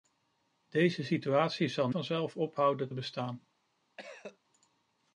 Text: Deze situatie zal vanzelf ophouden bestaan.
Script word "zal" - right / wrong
right